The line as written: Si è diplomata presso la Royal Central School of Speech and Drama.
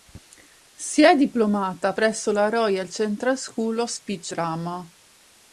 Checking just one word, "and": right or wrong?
wrong